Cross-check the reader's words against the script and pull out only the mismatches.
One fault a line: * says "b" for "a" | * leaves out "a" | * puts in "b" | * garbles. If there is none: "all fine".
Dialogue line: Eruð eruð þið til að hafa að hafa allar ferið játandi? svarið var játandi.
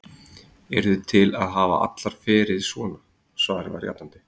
* leaves out "eruð"
* leaves out "að hafa"
* says "svona" for "játandi"